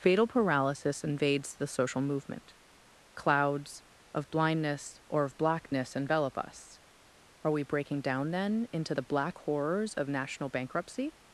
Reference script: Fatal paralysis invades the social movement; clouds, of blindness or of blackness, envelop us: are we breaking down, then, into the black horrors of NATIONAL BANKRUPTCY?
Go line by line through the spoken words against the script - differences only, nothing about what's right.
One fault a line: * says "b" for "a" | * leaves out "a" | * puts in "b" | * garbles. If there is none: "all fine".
all fine